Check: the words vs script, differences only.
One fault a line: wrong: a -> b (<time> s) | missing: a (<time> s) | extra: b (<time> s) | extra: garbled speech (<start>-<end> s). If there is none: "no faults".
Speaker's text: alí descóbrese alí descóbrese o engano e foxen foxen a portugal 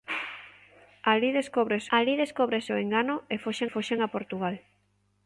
no faults